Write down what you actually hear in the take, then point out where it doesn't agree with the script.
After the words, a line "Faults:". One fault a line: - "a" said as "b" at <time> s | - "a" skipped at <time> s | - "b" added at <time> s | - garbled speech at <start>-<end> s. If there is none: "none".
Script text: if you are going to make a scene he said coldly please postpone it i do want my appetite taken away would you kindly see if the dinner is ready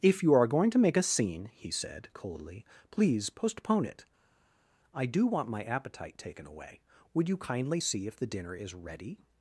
if you are going to make a scene he said coldly please postpone it i do want my appetite taken away would you kindly see if the dinner is ready
Faults:
none